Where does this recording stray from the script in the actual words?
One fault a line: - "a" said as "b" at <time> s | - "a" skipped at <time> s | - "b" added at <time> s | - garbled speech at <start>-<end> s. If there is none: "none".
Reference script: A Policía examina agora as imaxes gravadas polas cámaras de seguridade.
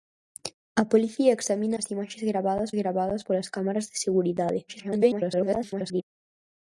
- "agora" skipped at 1.8 s
- "gravadas" added at 2.8 s
- garbled speech at 4.7-6.0 s